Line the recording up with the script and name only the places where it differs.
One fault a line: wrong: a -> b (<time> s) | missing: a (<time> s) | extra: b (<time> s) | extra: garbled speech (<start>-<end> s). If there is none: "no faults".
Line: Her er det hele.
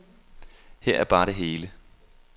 extra: bare (1.0 s)